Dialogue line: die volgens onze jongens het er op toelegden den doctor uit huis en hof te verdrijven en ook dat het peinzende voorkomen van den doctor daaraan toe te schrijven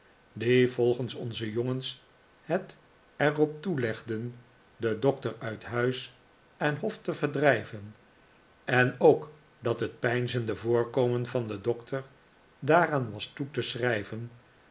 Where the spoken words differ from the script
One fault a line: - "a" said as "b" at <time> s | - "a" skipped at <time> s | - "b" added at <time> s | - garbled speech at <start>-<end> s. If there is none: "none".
- "was" added at 13.1 s